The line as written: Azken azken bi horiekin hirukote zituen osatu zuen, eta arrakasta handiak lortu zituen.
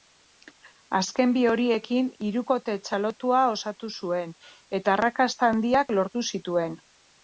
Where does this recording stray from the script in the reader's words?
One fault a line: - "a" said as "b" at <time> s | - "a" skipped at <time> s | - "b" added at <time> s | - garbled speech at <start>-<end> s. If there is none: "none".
- "azken" skipped at 1.4 s
- "zituen" said as "txalotua" at 2.9 s